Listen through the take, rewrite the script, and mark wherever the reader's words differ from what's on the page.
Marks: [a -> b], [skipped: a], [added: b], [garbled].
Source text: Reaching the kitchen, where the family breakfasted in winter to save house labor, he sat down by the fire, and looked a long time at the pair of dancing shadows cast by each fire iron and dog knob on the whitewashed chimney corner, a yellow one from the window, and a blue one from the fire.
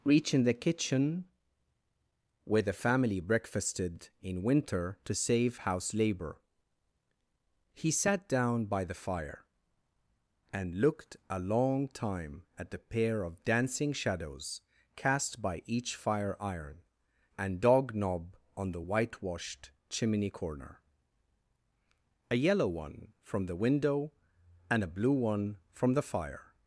Reaching the kitchen, where the family breakfasted in winter to save house labor, he sat down by the fire, and looked a long time at the pair of dancing shadows cast by each fire iron and dog knob on the whitewashed chimney corner, a yellow one from the window, and a blue one from the fire.